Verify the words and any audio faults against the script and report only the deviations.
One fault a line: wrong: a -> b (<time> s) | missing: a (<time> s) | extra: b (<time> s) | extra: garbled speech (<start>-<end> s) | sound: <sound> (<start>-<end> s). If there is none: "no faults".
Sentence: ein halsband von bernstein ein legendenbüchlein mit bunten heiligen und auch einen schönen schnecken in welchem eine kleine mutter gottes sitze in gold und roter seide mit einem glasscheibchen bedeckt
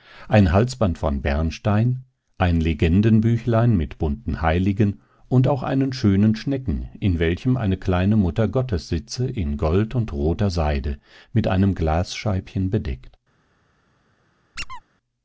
sound: squeak (14.6-14.8 s)